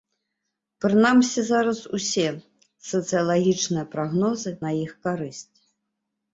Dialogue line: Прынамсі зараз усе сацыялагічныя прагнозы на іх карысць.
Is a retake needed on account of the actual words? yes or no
no